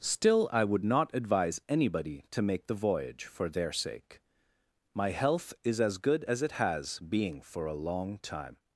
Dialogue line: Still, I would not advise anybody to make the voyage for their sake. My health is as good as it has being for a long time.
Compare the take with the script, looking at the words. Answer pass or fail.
pass